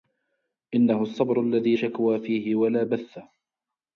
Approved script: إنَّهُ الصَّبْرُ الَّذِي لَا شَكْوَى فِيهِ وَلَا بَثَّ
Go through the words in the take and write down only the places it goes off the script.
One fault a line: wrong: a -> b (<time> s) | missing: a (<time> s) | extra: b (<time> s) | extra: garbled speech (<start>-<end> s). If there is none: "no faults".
missing: لَا (1.8 s)